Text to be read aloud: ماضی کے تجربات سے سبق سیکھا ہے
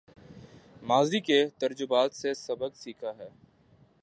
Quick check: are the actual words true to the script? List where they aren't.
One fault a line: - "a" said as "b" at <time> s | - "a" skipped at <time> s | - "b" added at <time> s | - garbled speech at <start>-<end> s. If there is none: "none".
none